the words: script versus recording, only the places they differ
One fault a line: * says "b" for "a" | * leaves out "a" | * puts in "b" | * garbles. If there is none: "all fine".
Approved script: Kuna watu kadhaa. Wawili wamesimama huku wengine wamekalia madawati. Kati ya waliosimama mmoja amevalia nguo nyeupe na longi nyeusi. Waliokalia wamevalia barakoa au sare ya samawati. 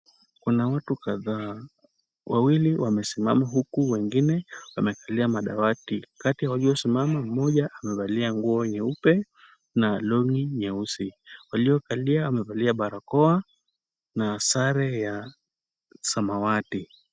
* says "na" for "au"